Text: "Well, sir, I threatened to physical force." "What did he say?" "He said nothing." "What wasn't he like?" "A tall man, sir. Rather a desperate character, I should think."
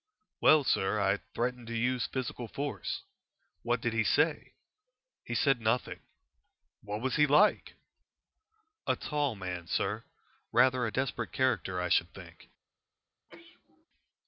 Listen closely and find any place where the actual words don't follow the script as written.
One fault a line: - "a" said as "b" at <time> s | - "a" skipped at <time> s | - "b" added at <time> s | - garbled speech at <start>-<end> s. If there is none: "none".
- "use" added at 1.8 s
- "wasn't" said as "was" at 7.0 s